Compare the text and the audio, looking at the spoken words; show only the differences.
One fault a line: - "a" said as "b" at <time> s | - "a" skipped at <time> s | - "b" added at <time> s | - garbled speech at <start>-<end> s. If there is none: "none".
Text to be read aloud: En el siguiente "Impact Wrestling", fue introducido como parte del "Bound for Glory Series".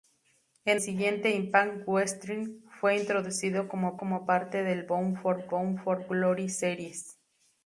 - "el" skipped at 0.8 s
- "como" added at 4.0 s
- "bound for" added at 5.5 s